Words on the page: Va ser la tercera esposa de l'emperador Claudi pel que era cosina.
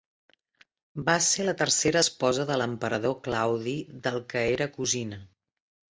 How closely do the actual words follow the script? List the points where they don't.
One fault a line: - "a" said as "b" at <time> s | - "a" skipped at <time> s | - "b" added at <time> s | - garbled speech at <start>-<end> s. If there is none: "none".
- "pel" said as "del" at 4.1 s